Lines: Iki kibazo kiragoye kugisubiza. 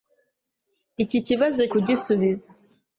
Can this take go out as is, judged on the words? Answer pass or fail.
fail